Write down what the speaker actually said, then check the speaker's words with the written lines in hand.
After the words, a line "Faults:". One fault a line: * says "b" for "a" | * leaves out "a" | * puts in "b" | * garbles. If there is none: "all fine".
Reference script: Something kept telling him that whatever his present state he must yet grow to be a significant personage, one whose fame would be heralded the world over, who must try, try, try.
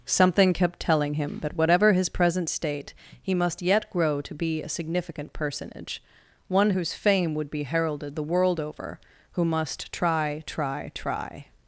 Something kept telling him that whatever his present state he must yet grow to be a significant personage, one whose fame would be heralded the world over, who must try, try, try.
Faults:
all fine